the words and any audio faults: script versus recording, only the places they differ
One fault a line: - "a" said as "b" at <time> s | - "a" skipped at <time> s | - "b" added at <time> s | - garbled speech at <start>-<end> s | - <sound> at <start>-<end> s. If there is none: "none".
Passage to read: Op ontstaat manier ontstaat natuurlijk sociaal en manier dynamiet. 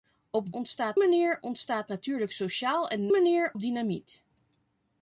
none